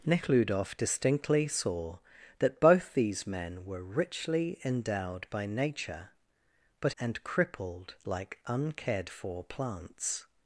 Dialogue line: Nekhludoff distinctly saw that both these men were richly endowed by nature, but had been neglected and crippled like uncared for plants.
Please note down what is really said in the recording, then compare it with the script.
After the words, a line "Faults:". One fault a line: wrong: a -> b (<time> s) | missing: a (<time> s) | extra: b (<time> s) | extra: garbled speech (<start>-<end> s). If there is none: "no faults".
Nekhludoff distinctly saw that both these men were richly endowed by nature, but and crippled like uncared for plants.
Faults:
missing: had been neglected (6.9 s)